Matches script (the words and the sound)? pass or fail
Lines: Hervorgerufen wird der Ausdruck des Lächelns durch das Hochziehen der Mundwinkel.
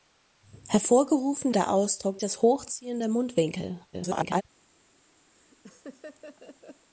fail